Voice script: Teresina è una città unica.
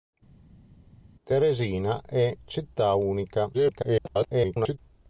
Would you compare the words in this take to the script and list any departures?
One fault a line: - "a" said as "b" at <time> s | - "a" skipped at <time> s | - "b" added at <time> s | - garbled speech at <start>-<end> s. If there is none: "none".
- "una" skipped at 2.3 s
- garbled speech at 3.5-4.8 s